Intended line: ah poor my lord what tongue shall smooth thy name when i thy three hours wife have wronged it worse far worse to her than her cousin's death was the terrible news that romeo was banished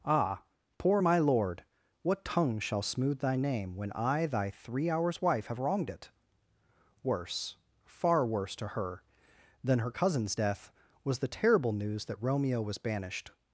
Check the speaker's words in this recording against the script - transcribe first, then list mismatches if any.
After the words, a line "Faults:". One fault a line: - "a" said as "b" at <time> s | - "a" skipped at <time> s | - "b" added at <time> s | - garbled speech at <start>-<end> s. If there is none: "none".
ah poor my lord what tongue shall smooth thy name when i thy three hours wife have wronged it worse far worse to her than her cousin's death was the terrible news that romeo was banished
Faults:
none